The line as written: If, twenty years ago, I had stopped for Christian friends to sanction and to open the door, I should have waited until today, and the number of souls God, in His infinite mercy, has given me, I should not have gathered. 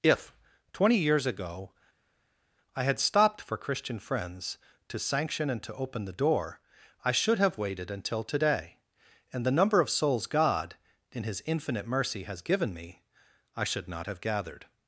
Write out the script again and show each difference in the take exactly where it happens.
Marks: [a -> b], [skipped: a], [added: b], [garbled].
If, twenty years ago, I had stopped for Christian friends to sanction and to open the door, I should have waited until today, and the number of souls God, in His infinite mercy, has given me, I should not have gathered.